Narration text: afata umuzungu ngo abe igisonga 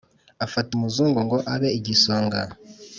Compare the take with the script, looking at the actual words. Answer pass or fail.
pass